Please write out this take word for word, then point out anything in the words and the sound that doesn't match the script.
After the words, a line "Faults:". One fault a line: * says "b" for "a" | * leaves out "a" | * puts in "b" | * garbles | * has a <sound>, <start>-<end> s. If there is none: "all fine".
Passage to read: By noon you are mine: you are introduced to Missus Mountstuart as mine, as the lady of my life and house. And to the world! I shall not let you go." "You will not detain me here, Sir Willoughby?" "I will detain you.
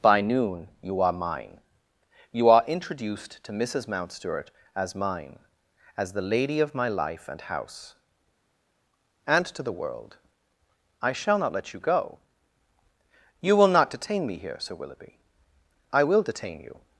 By noon you are mine: you are introduced to Missus Mountstuart as mine, as the lady of my life and house. And to the world! I shall not let you go." "You will not detain me here, Sir Willoughby?" "I will detain you.
Faults:
all fine